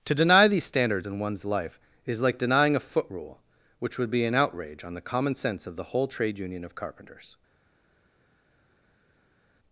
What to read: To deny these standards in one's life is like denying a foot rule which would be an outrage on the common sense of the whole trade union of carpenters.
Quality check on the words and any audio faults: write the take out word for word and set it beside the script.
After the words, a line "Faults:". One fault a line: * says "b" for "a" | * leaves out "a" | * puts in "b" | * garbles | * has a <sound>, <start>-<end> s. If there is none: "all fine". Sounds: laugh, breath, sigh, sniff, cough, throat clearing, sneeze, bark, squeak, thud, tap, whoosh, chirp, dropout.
To deny these standards in one's life is like denying a foot rule which would be an outrage on the common sense of the whole trade union of carpenters.
Faults:
all fine